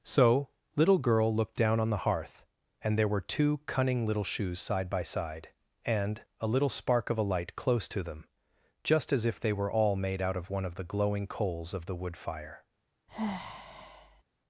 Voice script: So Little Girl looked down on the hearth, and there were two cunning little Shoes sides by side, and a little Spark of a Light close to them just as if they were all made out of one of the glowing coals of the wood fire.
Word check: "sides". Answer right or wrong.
wrong